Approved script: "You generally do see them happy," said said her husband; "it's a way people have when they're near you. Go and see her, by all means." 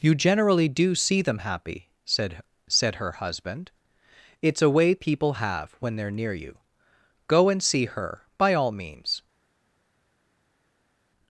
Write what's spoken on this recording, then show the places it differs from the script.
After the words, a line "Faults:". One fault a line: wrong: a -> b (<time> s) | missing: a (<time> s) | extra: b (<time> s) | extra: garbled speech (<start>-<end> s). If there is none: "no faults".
"You generally do see them happy," said said her husband; "it's a way people have when they're near you. Go and see her, by all means."
Faults:
no faults